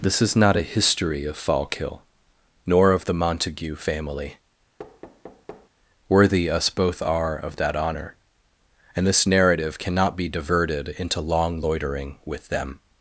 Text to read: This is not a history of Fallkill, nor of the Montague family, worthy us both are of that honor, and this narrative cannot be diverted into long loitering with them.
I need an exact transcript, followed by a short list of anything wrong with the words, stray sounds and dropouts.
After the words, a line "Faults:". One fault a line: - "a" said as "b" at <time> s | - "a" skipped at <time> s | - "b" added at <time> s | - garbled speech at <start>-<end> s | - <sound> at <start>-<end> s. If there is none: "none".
This is not a history of Fallkill, nor of the Montague family, worthy us both are of that honor, and this narrative cannot be diverted into long loitering with them.
Faults:
- thud at 4.8-5.7 s